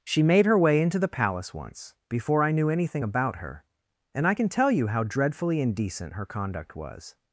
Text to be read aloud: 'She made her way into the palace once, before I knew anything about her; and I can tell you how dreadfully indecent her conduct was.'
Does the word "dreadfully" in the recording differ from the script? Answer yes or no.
no